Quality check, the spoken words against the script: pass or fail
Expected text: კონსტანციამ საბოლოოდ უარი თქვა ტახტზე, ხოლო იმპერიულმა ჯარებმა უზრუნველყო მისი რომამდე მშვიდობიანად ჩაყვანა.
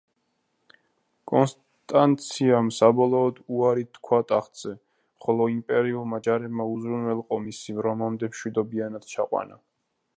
pass